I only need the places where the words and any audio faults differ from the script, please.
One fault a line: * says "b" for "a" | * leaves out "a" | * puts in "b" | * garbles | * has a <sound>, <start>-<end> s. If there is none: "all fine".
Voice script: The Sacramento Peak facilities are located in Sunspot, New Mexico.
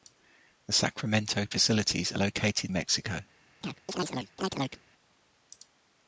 * leaves out "Peak"
* leaves out "in Sunspot New"
* has a chirp, 3.6-4.8 s